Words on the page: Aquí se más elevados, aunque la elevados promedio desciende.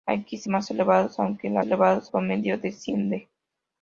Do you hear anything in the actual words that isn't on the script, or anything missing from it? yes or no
no